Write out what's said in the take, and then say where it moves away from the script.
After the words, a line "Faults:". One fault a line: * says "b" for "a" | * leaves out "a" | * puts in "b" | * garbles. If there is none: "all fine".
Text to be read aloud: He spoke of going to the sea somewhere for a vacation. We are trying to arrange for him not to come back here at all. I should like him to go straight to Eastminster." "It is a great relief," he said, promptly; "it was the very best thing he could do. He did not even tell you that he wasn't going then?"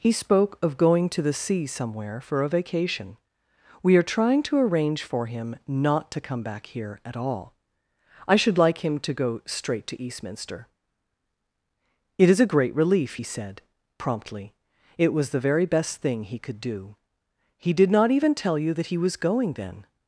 He spoke of going to the sea somewhere for a vacation. We are trying to arrange for him not to come back here at all. I should like him to go straight to Eastminster." "It is a great relief," he said, promptly; "it was the very best thing he could do. He did not even tell you that he was going then?"
Faults:
* says "was" for "wasn't"